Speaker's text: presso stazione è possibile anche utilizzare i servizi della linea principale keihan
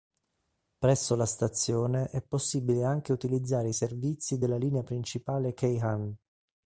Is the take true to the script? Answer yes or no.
no